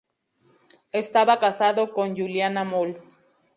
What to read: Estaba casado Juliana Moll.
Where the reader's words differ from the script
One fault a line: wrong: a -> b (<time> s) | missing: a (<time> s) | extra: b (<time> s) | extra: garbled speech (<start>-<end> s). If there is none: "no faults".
extra: con (1.9 s)